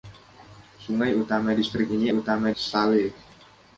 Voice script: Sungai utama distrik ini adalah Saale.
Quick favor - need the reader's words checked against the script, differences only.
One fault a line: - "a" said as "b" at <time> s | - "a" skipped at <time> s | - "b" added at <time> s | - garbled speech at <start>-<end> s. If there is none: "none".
- "adalah" said as "utama" at 2.1 s